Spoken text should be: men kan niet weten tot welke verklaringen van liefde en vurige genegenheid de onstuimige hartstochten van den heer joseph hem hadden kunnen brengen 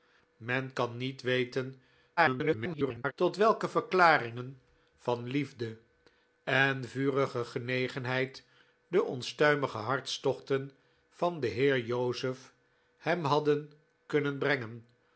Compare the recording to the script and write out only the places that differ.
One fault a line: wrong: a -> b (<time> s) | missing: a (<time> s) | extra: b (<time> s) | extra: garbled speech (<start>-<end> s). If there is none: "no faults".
extra: garbled speech (2.2-3.1 s)